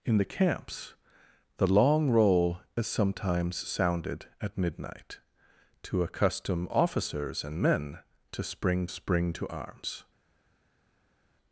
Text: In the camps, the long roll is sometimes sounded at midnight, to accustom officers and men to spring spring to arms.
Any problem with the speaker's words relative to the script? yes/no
no